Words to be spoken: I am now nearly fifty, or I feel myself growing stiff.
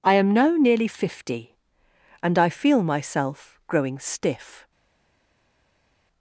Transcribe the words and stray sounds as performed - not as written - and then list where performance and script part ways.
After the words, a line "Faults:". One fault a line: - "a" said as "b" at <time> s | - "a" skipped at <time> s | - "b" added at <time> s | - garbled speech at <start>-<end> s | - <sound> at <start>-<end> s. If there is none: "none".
I am now nearly fifty, and I feel myself growing stiff.
Faults:
- "or" said as "and" at 2.2 s